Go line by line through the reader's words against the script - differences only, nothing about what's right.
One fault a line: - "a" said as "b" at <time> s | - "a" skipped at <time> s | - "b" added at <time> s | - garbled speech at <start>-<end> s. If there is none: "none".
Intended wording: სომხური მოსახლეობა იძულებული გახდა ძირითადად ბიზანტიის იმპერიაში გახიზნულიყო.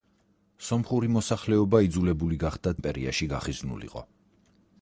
- "ძირითადად ბიზანტიის" skipped at 2.7 s